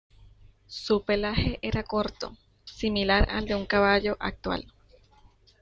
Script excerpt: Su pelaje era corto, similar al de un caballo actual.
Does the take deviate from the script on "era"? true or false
false